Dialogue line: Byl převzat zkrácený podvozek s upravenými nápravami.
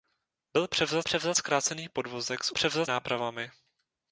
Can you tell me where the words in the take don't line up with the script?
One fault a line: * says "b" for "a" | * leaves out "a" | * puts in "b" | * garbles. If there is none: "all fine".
* puts in "převzat"
* says "převzat" for "upravenými"